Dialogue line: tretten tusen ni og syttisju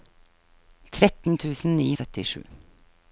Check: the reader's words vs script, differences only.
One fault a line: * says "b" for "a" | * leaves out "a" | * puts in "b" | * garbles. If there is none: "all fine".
all fine